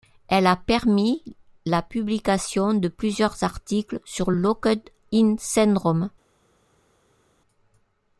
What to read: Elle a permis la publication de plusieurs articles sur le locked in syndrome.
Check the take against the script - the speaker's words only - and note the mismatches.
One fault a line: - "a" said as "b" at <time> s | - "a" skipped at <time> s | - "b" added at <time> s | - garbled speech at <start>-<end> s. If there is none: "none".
- "le" skipped at 4.3 s